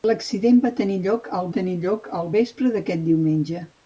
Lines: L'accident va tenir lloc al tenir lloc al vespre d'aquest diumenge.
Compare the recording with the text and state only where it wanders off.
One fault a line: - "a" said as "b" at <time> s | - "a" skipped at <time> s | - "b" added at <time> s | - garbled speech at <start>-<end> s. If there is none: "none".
none